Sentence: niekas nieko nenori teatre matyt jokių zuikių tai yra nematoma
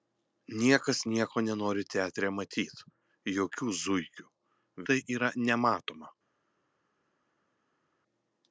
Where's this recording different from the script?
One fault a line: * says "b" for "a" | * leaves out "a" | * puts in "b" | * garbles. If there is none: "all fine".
all fine